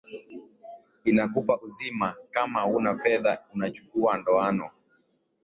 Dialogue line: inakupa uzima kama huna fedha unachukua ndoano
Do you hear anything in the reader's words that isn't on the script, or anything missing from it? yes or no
no